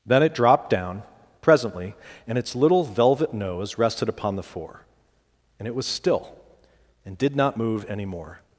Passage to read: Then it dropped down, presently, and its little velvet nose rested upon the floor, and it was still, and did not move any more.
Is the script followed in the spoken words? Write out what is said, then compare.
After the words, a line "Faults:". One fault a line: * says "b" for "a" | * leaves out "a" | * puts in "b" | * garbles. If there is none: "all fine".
Then it dropped down, presently, and its little velvet nose rested upon the four, and it was still, and did not move any more.
Faults:
* says "four" for "floor"